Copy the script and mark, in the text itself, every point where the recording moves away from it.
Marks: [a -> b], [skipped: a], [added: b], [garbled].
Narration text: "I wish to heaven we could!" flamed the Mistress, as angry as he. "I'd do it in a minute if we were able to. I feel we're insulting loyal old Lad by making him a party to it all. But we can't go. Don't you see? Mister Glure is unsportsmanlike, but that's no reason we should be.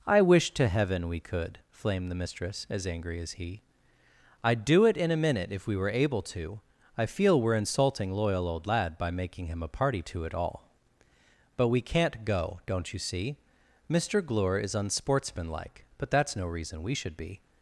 "I wish to heaven we could!" flamed the Mistress, as angry as he. "I'd do it in a minute if we were able to. I feel we're insulting loyal old Lad by making him a party to it all. But we can't go. Don't you see? Mister Glure is unsportsmanlike, but that's no reason we should be.